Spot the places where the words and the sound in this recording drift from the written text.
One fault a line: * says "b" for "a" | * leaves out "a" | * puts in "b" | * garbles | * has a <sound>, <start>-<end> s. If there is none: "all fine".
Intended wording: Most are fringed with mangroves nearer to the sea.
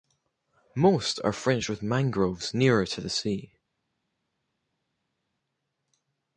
all fine